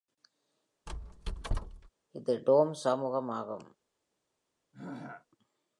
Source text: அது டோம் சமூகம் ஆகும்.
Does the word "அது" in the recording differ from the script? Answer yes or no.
yes